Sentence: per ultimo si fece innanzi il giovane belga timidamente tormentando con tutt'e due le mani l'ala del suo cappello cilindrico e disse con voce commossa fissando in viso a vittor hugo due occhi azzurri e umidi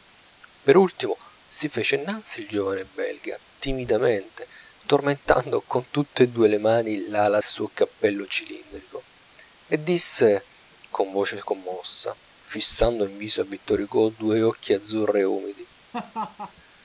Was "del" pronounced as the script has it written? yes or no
no